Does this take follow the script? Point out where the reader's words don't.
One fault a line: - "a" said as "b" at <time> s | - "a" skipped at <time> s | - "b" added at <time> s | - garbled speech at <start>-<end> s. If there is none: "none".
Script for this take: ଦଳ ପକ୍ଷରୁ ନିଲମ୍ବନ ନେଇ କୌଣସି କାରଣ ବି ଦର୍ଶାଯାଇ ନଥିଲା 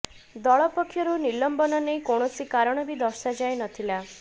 none